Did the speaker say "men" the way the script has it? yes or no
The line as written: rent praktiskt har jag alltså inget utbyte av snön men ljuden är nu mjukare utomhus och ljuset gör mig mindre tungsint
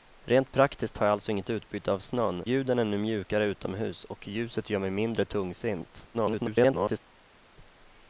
no